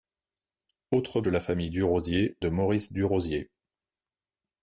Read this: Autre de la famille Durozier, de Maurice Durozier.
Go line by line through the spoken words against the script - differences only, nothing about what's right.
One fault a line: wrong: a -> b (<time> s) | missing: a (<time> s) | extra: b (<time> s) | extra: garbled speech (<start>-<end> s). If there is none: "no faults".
no faults